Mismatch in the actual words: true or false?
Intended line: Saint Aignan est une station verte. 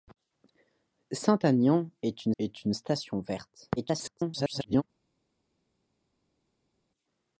true